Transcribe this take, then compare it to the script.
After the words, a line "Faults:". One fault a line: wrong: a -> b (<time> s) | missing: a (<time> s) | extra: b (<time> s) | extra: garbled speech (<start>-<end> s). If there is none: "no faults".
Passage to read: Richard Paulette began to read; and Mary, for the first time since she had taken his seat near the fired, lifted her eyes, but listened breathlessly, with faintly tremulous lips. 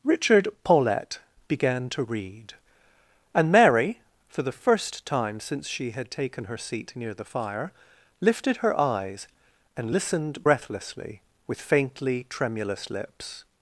Richard Paulette began to read; and Mary, for the first time since she had taken her seat near the fire, lifted her eyes, and listened breathlessly, with faintly tremulous lips.
Faults:
wrong: his -> her (6.5 s)
wrong: fired -> fire (7.2 s)
wrong: but -> and (9.8 s)